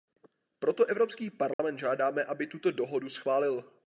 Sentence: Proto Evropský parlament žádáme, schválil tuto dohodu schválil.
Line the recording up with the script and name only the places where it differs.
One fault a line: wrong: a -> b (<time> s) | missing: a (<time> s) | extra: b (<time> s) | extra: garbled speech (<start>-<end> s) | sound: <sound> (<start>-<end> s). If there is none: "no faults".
sound: dropout (1.5-1.6 s)
wrong: schválil -> aby (2.2 s)